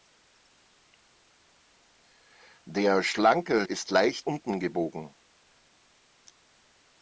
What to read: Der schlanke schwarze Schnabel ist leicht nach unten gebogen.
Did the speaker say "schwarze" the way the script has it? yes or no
no